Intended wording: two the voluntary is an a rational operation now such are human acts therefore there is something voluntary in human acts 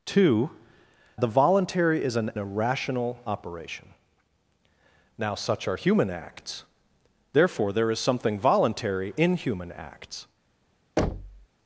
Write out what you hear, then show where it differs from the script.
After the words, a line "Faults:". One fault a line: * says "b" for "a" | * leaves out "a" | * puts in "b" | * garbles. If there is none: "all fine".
two the voluntary is an a rational operation now such are human acts therefore there is something voluntary in human acts
Faults:
all fine